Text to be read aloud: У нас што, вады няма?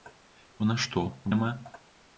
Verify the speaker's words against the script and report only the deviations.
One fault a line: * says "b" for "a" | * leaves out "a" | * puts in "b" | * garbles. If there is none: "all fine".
* leaves out "вады"